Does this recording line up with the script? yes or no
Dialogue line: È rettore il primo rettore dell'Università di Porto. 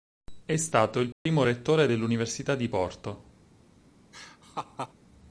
no